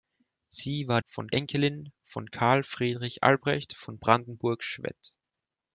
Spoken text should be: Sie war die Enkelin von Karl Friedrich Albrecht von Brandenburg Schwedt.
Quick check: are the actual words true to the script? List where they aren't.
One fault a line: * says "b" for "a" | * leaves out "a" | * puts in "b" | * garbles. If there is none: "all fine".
* says "von" for "die"